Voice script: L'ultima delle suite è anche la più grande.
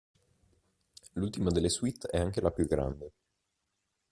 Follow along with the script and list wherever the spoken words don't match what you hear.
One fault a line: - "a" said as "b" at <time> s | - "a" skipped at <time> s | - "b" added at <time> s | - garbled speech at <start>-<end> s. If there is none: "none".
none